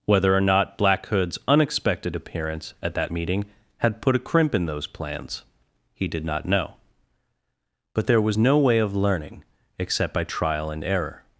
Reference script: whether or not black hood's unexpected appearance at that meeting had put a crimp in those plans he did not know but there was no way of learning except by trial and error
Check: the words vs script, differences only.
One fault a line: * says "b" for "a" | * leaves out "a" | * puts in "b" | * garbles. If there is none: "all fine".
all fine